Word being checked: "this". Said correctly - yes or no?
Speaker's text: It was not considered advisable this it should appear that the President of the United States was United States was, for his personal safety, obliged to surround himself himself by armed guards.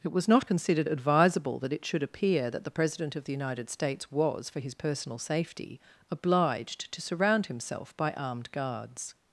no